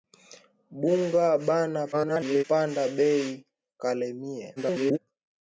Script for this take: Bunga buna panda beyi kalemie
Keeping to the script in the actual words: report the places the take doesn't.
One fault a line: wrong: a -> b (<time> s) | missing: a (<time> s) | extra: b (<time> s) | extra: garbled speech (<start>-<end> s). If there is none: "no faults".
extra: garbled speech (1.9-2.4 s)
extra: garbled speech (4.6-5.0 s)